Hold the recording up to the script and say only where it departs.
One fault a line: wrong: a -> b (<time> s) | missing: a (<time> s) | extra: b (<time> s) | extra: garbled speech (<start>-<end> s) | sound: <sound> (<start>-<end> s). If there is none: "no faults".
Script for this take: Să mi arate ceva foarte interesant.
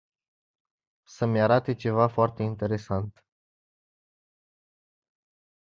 no faults